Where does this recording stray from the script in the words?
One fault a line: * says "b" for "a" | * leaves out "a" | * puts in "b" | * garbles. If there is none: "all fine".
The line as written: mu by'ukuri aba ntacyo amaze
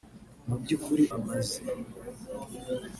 * leaves out "aba ntacyo"